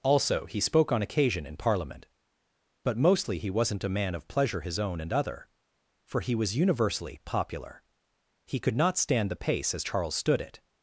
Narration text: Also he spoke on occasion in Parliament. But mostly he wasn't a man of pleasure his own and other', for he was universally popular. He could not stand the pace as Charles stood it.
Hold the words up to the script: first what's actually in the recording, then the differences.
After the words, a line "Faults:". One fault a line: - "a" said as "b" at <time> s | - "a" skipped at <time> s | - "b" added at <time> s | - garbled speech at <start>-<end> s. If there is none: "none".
Also he spoke on occasion in Parliament. But mostly he wasn't a man of pleasure his own and other', for he was universally popular. He could not stand the pace as Charles stood it.
Faults:
none